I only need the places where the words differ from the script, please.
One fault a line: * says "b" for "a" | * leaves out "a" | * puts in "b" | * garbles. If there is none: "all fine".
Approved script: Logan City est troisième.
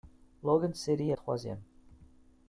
all fine